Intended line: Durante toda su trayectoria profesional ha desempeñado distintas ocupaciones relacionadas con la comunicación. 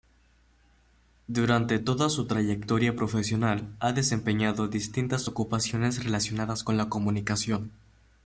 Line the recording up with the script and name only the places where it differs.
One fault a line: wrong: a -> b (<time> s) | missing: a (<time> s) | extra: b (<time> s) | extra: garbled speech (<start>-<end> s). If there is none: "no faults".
no faults